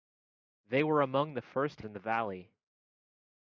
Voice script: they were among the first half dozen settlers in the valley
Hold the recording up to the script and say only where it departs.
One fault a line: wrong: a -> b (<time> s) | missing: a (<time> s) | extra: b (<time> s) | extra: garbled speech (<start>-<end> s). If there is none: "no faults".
missing: half dozen settlers (1.8 s)